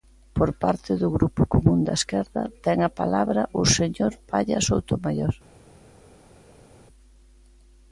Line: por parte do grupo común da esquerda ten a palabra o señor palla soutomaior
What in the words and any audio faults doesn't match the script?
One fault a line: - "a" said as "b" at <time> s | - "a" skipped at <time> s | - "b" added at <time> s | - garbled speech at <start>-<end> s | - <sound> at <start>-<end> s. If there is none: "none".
none